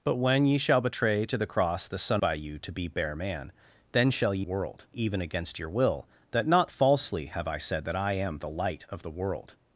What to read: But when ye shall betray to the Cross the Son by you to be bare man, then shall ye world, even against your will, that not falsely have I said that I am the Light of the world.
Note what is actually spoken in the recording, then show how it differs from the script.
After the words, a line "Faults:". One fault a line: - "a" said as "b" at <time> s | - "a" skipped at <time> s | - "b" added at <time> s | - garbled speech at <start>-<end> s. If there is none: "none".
But when ye shall betray to the Cross the Son by you to be bare man, then shall ye world, even against your will, that not falsely have I said that I am the Light of the world.
Faults:
none